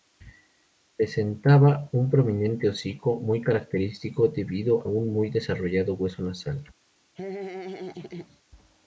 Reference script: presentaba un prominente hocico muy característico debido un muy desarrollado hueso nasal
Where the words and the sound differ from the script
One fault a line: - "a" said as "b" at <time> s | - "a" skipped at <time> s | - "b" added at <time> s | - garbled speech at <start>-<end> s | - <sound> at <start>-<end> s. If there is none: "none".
- laugh at 7.1-8.4 s